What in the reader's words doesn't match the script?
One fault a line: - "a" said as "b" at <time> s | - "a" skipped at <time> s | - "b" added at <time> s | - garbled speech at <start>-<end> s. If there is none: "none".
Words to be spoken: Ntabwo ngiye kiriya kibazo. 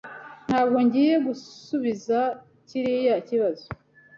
- "gusubiza" added at 1.3 s